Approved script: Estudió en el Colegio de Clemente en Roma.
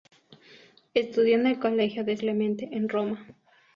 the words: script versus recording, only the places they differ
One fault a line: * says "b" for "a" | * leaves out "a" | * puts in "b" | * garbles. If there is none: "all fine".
all fine